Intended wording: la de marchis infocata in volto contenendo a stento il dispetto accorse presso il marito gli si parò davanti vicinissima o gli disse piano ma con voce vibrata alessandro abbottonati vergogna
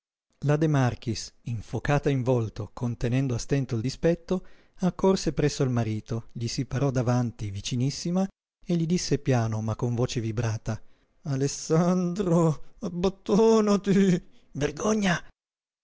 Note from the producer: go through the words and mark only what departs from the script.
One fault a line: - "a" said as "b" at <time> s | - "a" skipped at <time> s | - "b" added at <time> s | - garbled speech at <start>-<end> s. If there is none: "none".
- "o" said as "e" at 8.6 s